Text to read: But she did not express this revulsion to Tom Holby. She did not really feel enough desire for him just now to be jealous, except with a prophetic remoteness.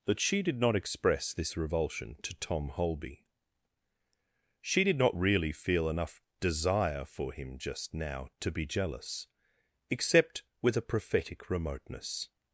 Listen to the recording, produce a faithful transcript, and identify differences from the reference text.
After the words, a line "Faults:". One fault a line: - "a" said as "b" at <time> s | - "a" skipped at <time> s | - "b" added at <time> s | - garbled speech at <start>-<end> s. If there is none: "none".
That she did not express this revulsion to Tom Holby. She did not really feel enough desire for him just now to be jealous, except with a prophetic remoteness.
Faults:
- "But" said as "That" at 0.1 s